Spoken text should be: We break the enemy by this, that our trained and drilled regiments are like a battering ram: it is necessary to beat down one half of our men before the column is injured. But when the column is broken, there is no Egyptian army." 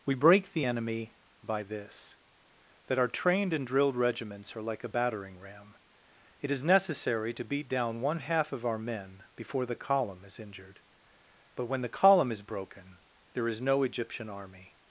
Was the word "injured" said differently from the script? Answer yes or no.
no